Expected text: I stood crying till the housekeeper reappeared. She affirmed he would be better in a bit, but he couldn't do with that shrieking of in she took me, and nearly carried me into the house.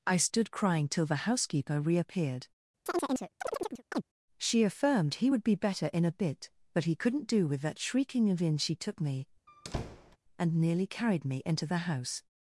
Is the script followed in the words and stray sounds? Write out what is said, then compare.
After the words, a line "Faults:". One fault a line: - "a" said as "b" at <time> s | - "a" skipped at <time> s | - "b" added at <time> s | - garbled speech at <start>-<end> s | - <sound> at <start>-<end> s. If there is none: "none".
I stood crying till the housekeeper reappeared. She affirmed he would be better in a bit, but he couldn't do with that shrieking of in she took me, and nearly carried me into the house.
Faults:
- chirp at 2.9-4.0 s
- squeak at 9.5-10.2 s